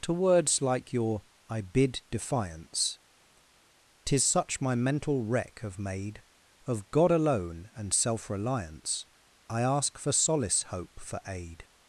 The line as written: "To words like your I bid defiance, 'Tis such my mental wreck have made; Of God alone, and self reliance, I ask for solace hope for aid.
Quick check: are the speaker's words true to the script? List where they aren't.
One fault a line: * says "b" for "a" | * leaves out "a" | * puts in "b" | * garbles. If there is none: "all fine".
all fine